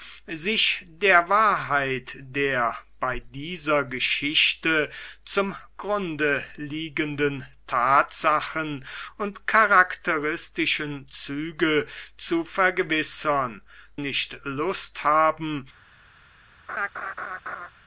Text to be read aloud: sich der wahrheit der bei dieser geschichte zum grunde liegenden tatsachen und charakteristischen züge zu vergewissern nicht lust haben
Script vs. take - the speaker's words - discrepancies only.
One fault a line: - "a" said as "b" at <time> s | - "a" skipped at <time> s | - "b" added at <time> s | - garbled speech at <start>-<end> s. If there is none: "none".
none